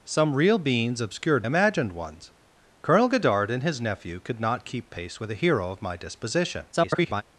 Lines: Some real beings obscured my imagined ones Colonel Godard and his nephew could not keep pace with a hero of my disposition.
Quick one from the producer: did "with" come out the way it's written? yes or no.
yes